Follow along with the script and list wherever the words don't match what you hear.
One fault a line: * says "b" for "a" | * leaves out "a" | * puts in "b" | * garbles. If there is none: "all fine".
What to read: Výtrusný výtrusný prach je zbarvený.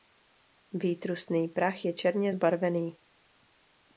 * leaves out "výtrusný"
* puts in "černě"